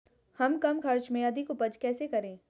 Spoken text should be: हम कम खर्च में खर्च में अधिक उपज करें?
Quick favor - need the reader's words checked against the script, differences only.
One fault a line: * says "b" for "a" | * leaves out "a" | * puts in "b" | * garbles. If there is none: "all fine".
* leaves out "खर्च में"
* puts in "कैसे"